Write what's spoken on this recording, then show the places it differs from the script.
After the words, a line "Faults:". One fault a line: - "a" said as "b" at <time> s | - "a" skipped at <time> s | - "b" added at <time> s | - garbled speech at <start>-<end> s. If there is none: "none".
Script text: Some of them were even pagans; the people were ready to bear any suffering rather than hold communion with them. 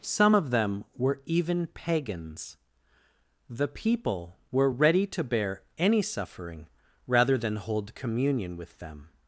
Some of them were even pagans; the people were ready to bear any suffering rather than hold communion with them.
Faults:
none